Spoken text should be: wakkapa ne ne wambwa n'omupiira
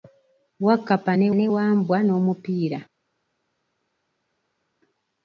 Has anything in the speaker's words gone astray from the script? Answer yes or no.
no